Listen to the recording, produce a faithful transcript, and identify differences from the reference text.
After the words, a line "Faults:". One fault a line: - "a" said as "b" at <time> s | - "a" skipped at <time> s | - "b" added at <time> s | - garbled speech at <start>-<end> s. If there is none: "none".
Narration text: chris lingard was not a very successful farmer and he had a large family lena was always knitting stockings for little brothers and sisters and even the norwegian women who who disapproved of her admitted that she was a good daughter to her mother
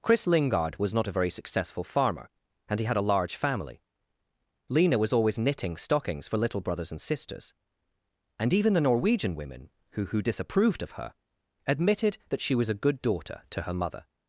chris lingard was not a very successful farmer and he had a large family lena was always knitting stockings for little brothers and sisters and even the norwegian women who who disapproved of her admitted that she was a good daughter to her mother
Faults:
none